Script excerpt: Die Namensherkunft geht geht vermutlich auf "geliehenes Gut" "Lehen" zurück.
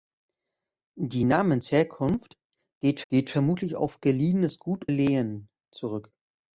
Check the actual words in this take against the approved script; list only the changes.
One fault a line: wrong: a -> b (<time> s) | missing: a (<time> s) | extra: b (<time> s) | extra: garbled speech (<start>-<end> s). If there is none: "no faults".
no faults